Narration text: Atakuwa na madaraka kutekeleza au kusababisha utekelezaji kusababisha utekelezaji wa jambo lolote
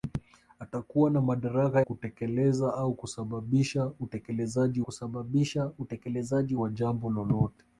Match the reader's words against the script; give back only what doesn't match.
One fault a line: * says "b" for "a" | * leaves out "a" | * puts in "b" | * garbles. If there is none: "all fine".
all fine